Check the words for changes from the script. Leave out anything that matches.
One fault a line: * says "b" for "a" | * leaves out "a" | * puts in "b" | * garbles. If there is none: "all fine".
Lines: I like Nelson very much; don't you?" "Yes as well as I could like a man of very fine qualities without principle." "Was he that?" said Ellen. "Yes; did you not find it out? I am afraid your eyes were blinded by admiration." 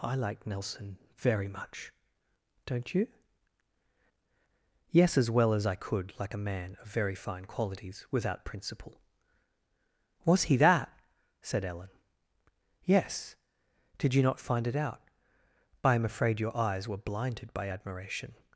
all fine